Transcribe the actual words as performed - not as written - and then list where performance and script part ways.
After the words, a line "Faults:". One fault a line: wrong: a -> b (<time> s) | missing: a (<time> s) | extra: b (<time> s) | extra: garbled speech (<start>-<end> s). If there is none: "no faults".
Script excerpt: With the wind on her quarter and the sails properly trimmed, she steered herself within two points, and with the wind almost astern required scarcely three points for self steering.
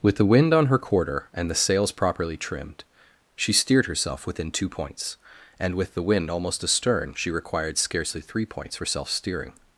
With the wind on her quarter and the sails properly trimmed, she steered herself within two points, and with the wind almost astern she required scarcely three points for self steering.
Faults:
extra: she (7.2 s)